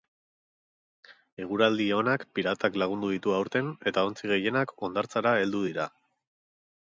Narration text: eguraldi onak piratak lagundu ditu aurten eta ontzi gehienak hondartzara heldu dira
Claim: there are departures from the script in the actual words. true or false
false